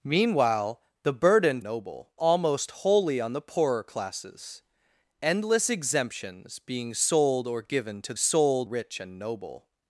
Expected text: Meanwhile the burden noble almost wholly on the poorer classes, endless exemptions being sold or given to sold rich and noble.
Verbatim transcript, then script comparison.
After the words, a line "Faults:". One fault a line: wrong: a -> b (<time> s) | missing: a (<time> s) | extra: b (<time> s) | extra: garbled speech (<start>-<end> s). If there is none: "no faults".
Meanwhile the burden noble almost wholly on the poorer classes, endless exemptions being sold or given to sold rich and noble.
Faults:
no faults